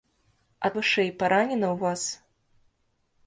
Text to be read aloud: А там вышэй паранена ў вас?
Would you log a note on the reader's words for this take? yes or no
yes